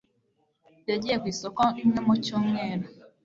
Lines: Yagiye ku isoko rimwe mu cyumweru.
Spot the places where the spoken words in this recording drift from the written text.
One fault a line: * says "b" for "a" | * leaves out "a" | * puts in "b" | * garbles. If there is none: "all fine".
all fine